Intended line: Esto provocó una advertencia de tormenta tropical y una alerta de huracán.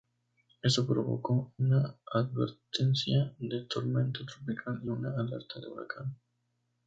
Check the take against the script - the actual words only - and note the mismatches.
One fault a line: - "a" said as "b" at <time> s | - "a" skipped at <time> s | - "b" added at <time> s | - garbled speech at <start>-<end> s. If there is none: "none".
none